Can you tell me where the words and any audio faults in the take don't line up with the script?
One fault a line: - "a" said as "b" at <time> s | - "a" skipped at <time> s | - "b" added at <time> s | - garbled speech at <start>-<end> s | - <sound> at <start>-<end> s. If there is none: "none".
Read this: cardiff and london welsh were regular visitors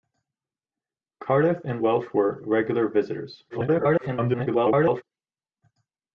- "london" skipped at 1.8 s
- garbled speech at 3.5-5.0 s